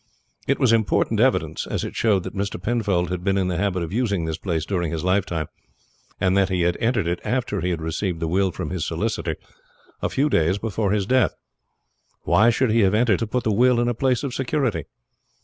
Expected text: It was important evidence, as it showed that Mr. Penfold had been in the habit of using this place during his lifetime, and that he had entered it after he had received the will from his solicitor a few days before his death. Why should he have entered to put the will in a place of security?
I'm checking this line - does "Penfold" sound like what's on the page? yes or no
yes